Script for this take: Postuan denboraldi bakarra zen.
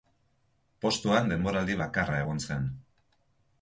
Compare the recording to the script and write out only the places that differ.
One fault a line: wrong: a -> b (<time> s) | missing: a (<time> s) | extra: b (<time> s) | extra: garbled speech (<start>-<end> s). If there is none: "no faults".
extra: egon (2.2 s)